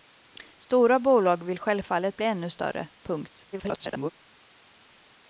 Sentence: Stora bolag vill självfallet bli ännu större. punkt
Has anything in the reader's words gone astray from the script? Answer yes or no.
yes